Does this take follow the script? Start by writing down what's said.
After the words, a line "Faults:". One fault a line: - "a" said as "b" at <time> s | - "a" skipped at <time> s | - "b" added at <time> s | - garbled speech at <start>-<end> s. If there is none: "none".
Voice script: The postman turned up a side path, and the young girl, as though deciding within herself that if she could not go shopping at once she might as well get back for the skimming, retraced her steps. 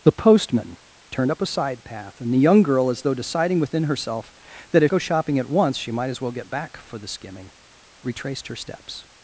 The postman turned up a side path, and the young girl, as though deciding within herself that if go shopping at once she might as well get back for the skimming, retraced her steps.
Faults:
- "she could not" skipped at 4.9 s